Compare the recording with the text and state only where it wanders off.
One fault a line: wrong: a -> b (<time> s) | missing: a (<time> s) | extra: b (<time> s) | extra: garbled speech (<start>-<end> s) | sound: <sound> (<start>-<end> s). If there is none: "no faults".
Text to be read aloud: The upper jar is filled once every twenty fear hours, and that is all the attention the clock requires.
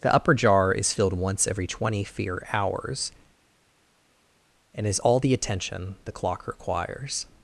missing: that (4.9 s)